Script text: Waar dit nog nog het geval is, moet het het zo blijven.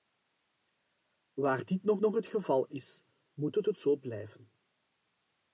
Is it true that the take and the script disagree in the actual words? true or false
false